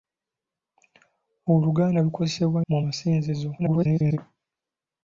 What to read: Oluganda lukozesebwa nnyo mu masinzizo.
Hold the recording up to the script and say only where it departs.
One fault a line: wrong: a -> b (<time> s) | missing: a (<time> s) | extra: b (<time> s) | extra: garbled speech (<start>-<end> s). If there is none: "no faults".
missing: nnyo (2.6 s)
extra: garbled speech (3.6-4.2 s)